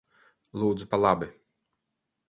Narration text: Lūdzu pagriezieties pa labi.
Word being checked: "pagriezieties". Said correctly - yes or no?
no